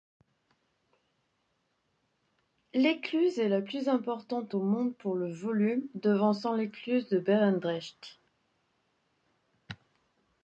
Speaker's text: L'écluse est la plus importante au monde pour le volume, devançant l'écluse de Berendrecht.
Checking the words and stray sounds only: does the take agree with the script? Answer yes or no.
yes